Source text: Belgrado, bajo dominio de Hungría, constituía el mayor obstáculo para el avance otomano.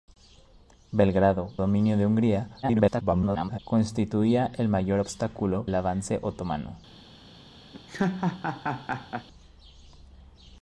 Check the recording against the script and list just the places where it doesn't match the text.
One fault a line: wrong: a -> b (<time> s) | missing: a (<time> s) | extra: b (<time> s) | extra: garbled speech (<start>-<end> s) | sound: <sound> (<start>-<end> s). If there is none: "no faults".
missing: bajo (1.5 s)
extra: garbled speech (2.6-3.6 s)
missing: para (5.7 s)
sound: laugh (7.7-9.3 s)